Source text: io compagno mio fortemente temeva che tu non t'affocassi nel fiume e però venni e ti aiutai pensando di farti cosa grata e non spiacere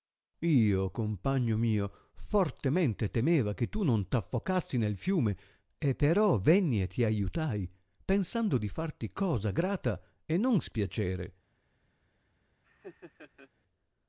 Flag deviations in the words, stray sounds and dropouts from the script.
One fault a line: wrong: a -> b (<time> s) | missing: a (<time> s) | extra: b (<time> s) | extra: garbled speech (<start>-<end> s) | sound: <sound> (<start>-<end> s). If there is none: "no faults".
sound: laugh (12.6-13.5 s)